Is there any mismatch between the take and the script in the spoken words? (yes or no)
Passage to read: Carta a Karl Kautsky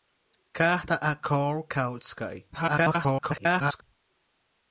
yes